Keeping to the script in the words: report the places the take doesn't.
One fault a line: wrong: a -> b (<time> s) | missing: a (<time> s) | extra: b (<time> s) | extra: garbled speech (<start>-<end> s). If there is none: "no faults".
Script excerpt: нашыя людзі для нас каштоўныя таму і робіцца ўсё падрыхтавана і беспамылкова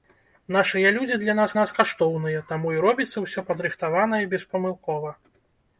extra: нас (1.6 s)